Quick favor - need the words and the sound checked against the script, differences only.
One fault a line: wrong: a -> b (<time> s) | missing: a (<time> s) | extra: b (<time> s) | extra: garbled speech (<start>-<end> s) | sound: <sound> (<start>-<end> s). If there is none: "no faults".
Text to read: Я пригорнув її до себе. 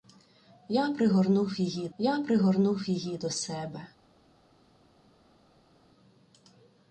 extra: я пригорнув її (2.0 s)